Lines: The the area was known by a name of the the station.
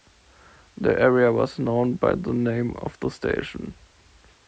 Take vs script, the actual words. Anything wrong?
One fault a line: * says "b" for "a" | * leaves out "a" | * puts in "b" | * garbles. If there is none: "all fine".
* leaves out "the"
* says "the" for "a"
* leaves out "the"